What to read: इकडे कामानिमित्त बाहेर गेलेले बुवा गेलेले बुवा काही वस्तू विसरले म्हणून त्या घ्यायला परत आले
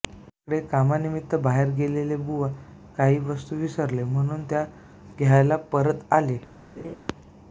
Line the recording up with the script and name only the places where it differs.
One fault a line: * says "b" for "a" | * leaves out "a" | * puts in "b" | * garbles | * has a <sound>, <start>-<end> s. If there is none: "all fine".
* leaves out "गेलेले बुवा"
* has a laugh, 6.8-7.0 s